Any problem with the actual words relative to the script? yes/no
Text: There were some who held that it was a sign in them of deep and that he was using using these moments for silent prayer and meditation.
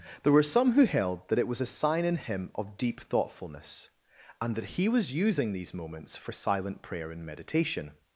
yes